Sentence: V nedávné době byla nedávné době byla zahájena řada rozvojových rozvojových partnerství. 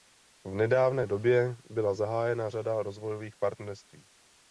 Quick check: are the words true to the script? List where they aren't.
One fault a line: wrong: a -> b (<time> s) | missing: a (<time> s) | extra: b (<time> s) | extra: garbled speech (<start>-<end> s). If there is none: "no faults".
missing: nedávné době byla (1.9 s)
missing: rozvojových (3.4 s)